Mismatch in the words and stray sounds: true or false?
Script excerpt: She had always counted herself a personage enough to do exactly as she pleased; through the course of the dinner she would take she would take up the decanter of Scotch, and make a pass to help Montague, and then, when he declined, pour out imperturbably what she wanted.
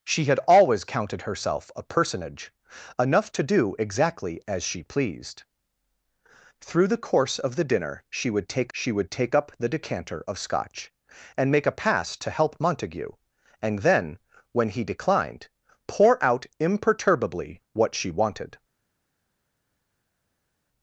false